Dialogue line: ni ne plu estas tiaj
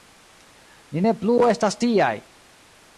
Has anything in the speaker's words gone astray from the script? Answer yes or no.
no